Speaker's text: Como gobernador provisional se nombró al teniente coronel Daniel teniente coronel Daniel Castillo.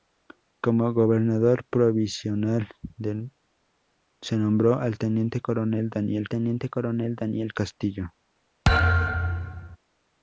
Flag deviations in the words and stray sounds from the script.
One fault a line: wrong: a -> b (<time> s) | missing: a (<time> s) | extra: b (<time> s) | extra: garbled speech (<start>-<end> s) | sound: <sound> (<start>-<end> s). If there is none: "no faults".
sound: thud (8.6-9.8 s)